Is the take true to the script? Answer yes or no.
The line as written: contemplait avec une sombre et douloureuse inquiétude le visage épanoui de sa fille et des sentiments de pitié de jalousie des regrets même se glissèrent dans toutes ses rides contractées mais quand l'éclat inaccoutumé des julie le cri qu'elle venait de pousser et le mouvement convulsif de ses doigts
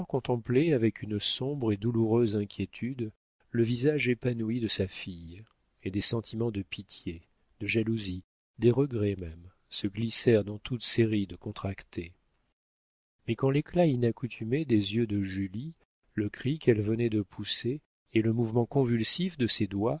no